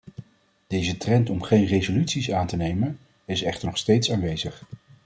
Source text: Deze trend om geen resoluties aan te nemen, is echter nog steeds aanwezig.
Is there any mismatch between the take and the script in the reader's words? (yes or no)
no